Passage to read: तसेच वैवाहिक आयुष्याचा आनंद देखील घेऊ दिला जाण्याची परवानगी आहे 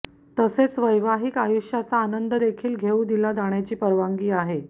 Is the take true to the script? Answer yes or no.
yes